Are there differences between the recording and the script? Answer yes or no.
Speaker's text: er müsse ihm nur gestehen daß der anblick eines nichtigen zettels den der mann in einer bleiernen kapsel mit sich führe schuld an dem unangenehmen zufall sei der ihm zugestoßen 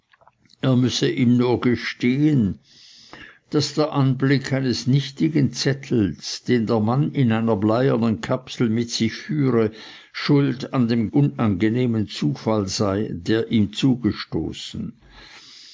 no